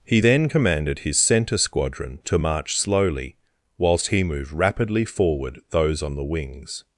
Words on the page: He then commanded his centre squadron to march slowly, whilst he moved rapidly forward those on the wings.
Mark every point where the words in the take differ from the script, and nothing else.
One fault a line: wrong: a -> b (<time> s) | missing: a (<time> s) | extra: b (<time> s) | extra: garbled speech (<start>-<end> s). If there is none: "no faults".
no faults